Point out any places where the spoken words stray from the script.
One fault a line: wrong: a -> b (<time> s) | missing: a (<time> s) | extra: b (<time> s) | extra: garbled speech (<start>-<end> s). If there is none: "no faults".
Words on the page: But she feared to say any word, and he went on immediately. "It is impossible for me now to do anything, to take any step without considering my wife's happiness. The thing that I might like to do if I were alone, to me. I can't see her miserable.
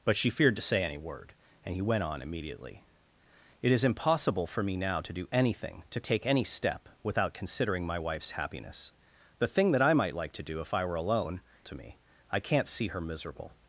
no faults